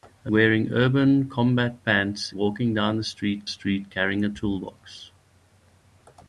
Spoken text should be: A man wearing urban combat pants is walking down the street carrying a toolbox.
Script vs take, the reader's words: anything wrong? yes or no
yes